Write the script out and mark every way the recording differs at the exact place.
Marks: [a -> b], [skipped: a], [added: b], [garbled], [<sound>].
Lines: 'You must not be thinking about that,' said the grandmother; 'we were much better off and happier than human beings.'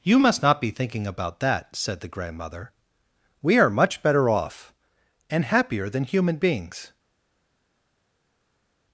'You must not be thinking about that,' said the grandmother; 'we [were -> are] much better off and happier than human beings.'